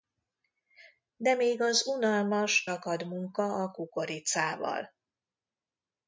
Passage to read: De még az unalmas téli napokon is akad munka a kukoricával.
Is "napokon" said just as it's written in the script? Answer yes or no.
no